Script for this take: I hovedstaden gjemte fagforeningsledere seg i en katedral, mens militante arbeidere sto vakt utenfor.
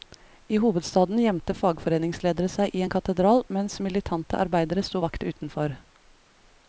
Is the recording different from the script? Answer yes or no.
no